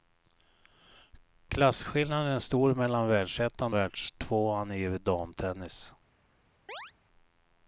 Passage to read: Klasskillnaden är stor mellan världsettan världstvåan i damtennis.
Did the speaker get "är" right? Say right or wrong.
right